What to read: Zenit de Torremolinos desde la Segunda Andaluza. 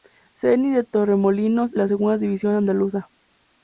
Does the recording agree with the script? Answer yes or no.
no